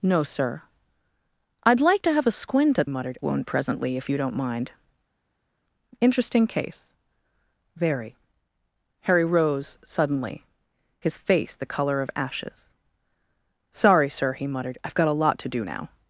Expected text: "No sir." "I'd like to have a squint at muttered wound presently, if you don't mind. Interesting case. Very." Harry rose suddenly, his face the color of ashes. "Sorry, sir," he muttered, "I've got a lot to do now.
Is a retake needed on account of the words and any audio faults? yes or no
no